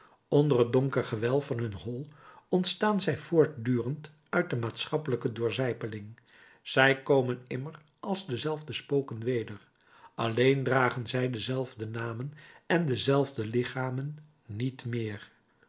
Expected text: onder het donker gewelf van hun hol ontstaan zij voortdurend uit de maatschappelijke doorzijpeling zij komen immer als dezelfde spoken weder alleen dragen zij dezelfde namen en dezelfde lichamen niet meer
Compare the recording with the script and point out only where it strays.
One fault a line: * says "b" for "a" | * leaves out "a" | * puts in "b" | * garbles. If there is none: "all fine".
all fine